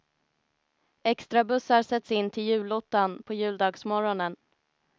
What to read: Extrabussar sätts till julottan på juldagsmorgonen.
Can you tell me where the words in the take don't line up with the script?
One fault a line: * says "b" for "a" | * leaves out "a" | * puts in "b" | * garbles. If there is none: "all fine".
* puts in "in"